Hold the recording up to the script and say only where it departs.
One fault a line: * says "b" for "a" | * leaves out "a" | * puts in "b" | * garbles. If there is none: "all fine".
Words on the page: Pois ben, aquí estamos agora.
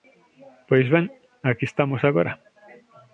all fine